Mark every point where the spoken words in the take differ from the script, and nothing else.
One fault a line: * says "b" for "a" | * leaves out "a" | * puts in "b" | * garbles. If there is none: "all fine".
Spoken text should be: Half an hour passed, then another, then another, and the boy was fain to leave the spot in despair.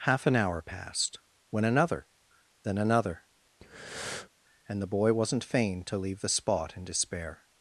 * says "when" for "then"
* says "wasn't" for "was"